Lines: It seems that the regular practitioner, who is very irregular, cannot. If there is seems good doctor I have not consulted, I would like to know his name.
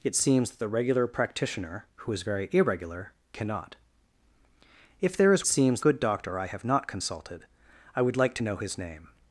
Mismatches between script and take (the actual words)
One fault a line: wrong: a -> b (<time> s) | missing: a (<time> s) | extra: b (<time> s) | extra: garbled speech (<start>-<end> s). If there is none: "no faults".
no faults